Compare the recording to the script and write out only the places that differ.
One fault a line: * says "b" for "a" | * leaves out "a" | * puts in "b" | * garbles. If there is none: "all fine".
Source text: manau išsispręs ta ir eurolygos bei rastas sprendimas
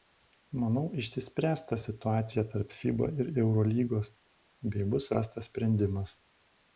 * puts in "situacija tarp fiba"
* puts in "bus"